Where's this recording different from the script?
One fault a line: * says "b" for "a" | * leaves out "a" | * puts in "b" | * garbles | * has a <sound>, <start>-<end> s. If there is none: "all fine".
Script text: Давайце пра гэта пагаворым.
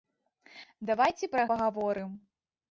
* leaves out "гэта"